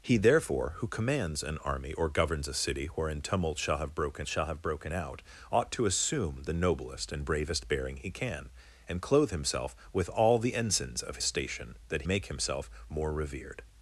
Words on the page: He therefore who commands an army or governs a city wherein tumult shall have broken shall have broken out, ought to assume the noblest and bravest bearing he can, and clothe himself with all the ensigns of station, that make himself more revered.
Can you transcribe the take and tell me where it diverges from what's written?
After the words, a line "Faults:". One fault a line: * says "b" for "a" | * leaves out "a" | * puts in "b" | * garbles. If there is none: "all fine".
He therefore who commands an army or governs a city wherein tumult shall have broken shall have broken out, ought to assume the noblest and bravest bearing he can, and clothe himself with all the ensigns of station, that make himself more revered.
Faults:
all fine